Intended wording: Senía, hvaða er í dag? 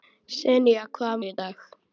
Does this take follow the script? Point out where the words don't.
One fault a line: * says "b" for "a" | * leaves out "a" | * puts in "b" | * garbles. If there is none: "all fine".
all fine